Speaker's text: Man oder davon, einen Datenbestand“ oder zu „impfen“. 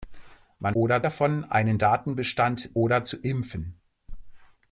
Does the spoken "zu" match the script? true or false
true